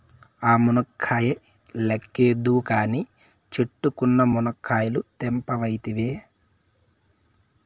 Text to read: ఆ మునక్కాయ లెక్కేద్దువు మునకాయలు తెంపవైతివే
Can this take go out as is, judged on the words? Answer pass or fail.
fail